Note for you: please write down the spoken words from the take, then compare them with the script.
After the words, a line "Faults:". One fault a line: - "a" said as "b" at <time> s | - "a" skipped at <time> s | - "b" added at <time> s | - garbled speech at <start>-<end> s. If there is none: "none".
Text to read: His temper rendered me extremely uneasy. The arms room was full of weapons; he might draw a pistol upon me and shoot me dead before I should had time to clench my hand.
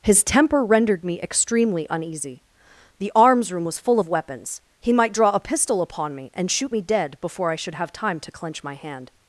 His temper rendered me extremely uneasy. The arms room was full of weapons; he might draw a pistol upon me and shoot me dead before I should have time to clench my hand.
Faults:
- "had" said as "have" at 7.7 s